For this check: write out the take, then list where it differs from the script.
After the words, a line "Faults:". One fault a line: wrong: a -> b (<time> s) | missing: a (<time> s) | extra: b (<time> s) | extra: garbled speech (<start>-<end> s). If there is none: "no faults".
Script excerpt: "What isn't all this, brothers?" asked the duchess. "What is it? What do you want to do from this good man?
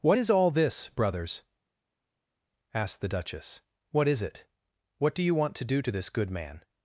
"What is all this, brothers?" asked the duchess. "What is it? What do you want to do to this good man?
Faults:
wrong: isn't -> is (0.2 s)
wrong: from -> to (5.8 s)